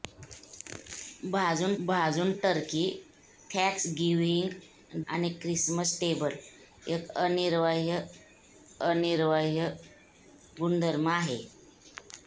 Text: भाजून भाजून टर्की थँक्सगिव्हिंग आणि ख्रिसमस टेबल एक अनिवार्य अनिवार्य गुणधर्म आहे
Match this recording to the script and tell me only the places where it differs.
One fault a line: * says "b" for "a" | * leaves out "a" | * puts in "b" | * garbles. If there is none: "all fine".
all fine